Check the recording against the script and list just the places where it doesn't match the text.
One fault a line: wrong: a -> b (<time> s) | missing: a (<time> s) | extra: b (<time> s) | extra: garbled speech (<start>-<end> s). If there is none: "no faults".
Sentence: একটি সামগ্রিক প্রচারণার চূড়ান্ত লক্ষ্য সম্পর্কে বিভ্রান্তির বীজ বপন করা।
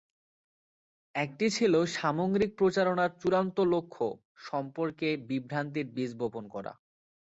extra: ছিল (1.5 s)